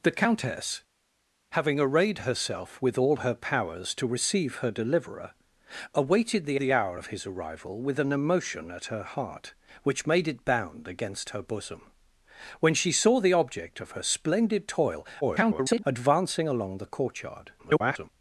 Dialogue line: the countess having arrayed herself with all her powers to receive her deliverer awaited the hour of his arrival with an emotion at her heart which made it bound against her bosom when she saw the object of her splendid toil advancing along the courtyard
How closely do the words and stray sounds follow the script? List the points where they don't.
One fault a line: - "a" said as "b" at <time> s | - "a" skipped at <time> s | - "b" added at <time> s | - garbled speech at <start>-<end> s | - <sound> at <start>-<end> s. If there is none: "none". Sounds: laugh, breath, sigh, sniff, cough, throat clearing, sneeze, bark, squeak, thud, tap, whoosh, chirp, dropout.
- "the" added at 6.6 s
- garbled speech at 15.2-15.8 s
- garbled speech at 17.6-18.1 s